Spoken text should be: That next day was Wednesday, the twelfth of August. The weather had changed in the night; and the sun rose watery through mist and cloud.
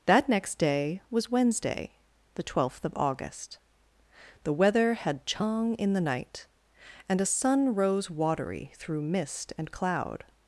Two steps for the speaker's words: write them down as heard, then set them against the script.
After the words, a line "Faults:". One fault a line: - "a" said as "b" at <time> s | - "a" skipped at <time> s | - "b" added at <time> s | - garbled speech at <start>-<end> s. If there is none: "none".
That next day was Wednesday, the twelfth of August. The weather had chang in the night; and a sun rose watery through mist and cloud.
Faults:
- "changed" said as "chang" at 5.2 s
- "the" said as "a" at 7.2 s